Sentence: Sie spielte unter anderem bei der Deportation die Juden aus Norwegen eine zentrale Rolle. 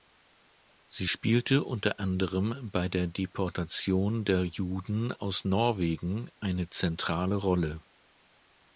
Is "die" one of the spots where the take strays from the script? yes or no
yes